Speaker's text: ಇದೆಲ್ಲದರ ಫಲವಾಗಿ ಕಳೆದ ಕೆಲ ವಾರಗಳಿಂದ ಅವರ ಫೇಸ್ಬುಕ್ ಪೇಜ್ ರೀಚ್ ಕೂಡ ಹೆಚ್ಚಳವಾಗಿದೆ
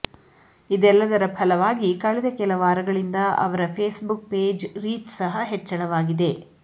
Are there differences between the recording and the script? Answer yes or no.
yes